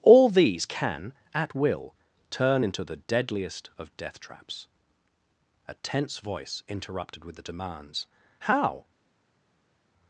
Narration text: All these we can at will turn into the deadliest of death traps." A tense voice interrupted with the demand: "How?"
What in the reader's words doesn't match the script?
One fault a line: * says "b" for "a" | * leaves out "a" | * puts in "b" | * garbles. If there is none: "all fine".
* leaves out "we"
* says "demands" for "demand"